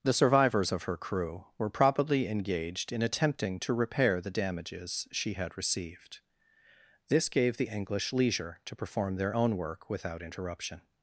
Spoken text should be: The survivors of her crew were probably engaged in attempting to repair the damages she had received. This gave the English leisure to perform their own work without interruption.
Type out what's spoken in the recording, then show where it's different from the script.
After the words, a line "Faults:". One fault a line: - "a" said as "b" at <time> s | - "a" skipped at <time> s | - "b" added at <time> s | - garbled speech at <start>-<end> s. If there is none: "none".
The survivors of her crew were probably engaged in attempting to repair the damages she had received. This gave the English leisure to perform their own work without interruption.
Faults:
none